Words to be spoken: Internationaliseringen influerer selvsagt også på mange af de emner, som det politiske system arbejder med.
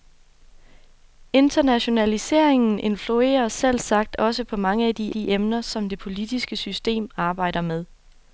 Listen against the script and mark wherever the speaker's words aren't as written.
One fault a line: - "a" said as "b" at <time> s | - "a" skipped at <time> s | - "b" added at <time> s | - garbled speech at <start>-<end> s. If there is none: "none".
- "de" added at 5.1 s